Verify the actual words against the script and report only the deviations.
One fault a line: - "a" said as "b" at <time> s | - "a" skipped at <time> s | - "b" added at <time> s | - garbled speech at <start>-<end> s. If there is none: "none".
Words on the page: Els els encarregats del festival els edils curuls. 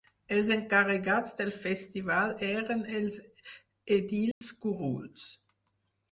- "els" skipped at 0.5 s
- "eren" added at 2.5 s